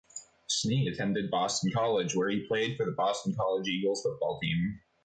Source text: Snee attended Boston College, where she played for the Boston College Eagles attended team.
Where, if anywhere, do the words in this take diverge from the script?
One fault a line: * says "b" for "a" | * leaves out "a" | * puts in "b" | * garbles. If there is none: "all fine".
* says "he" for "she"
* says "football" for "attended"